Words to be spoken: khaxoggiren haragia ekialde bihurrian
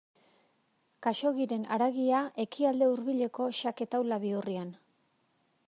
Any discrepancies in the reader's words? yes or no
yes